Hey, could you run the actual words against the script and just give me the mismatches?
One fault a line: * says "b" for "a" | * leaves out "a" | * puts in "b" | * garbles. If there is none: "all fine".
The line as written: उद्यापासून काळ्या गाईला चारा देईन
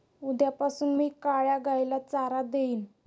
* puts in "मी"